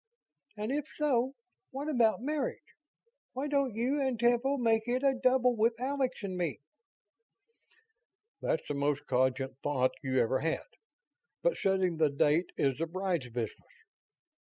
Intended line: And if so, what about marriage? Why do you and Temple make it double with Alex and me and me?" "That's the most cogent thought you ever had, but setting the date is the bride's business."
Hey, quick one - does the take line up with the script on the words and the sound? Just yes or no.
no